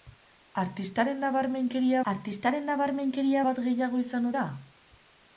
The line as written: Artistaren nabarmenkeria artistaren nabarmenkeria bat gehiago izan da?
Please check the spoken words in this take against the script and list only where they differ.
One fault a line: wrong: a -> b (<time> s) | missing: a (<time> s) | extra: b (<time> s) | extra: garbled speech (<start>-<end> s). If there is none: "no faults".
no faults